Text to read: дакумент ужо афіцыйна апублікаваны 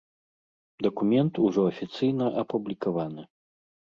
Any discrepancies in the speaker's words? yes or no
no